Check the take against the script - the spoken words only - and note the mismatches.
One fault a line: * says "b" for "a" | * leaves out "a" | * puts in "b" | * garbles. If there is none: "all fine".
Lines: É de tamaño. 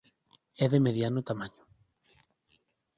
* puts in "mediano"